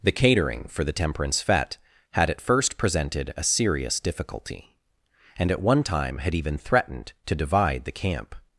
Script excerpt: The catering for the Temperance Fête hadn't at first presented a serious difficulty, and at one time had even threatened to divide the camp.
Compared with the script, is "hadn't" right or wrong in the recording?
wrong